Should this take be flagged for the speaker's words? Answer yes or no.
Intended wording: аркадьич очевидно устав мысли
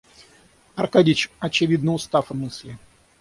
no